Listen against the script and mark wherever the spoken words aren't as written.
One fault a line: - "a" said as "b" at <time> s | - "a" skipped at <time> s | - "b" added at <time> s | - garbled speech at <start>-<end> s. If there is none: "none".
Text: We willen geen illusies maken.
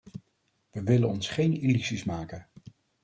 - "ons" added at 1.1 s